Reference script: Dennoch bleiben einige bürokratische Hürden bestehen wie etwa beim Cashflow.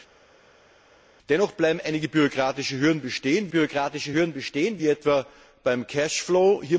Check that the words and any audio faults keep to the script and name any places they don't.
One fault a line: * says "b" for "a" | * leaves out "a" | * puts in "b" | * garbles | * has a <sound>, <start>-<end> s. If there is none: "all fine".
* puts in "bürokratische Hürden bestehen"